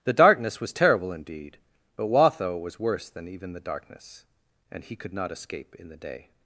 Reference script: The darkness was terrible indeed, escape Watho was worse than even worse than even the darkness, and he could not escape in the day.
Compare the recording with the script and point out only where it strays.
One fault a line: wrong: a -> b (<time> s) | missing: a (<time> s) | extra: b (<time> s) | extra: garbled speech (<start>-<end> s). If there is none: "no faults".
wrong: escape -> but (1.9 s)
missing: worse than even (3.5 s)